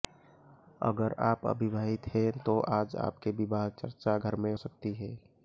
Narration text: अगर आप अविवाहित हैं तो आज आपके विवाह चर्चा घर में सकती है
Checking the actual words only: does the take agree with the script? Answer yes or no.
yes